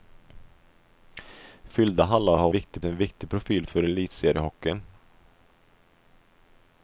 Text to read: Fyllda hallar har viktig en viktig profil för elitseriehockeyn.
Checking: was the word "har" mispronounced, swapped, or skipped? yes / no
no